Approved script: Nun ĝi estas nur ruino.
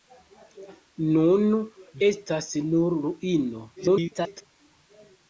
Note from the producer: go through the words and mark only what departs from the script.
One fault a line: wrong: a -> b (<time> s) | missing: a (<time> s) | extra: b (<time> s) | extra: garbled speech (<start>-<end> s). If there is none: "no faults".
missing: ĝi (1.4 s)
extra: garbled speech (3.8-4.5 s)